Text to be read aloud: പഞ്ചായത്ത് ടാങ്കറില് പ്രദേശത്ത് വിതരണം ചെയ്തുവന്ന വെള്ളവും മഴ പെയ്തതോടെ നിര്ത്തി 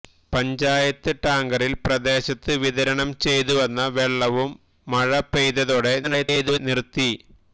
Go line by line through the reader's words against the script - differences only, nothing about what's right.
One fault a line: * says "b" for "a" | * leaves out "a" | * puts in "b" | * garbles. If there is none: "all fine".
* garbles